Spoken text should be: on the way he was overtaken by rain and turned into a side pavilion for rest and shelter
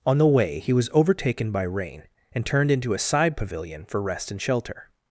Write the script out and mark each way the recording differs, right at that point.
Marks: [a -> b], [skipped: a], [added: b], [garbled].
on the way he was overtaken by rain and turned into a side pavilion for rest and shelter